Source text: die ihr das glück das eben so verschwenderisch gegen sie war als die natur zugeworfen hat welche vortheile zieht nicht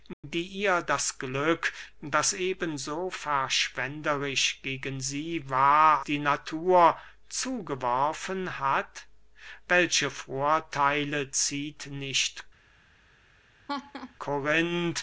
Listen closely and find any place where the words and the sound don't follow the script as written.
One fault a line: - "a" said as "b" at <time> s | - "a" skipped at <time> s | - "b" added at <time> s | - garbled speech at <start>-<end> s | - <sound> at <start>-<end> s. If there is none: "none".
- dropout at 0.1-0.2 s
- "als" skipped at 6.0 s
- laugh at 13.7-14.2 s